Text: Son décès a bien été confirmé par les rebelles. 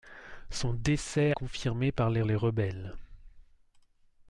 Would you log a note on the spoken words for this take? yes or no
yes